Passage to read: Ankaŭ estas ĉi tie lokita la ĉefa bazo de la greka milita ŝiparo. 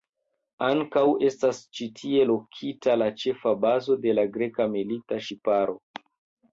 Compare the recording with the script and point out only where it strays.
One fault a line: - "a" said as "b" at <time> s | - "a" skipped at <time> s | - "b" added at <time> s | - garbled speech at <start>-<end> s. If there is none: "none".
none